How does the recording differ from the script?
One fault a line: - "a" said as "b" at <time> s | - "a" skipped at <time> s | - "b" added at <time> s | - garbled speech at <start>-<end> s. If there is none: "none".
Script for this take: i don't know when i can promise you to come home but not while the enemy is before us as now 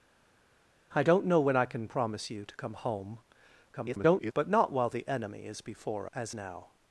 - garbled speech at 3.7-4.3 s
- "us" skipped at 6.1 s